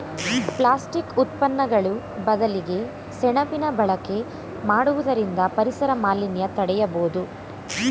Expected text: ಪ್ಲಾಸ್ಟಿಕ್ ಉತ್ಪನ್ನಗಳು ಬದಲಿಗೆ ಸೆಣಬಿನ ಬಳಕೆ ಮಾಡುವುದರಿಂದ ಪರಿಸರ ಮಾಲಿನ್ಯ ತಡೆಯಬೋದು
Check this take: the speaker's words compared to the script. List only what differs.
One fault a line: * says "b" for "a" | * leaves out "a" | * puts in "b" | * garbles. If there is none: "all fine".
all fine